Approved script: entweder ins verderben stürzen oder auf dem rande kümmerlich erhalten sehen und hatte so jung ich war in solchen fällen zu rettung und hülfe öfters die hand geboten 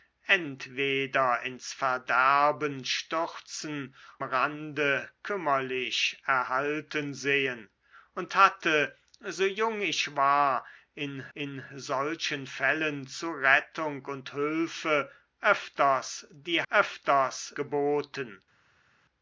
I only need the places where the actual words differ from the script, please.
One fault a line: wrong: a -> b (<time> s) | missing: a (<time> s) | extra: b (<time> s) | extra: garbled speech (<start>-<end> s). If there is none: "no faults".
missing: oder auf dem (3.9 s)
extra: in (11.3 s)
wrong: hand -> öfters (16.7 s)